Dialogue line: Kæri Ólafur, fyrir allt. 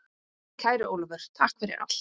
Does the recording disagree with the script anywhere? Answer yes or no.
yes